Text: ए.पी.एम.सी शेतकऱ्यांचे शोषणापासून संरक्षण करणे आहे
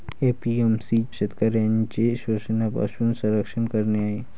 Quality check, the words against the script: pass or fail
pass